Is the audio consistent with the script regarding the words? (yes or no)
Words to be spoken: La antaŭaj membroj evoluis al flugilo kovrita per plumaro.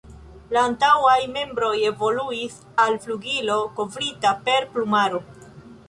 yes